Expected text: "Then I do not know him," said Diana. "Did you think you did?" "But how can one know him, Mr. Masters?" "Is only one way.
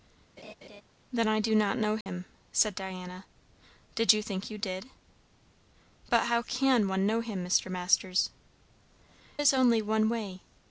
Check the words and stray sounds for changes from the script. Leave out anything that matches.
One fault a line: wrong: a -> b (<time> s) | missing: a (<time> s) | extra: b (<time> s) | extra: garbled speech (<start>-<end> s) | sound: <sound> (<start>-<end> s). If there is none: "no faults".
sound: laugh (0.4-0.8 s)
sound: dropout (2.0-2.1 s)